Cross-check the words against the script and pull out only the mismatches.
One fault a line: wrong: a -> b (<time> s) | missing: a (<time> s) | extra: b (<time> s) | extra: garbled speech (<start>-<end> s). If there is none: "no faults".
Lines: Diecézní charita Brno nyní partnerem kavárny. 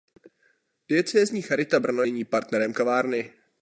no faults